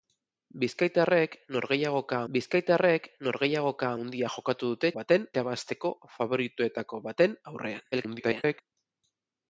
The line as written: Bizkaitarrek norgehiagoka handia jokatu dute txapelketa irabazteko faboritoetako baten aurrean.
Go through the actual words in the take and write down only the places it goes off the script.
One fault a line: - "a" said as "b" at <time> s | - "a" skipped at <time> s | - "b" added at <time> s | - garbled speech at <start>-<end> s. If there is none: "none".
- "bizkaitarrek norgehiagoka" added at 2.3 s
- "txapelketa" said as "baten" at 5.0 s
- garbled speech at 7.9-8.6 s